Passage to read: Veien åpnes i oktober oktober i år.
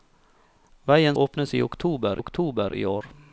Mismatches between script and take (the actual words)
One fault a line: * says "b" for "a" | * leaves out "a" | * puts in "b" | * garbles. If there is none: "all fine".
all fine